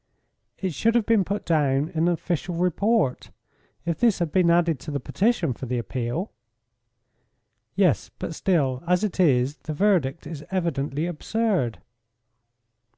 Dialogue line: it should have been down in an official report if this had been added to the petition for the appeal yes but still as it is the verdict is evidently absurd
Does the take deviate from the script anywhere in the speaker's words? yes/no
yes